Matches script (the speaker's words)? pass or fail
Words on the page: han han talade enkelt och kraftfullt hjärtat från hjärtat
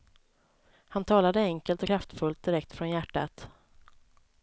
fail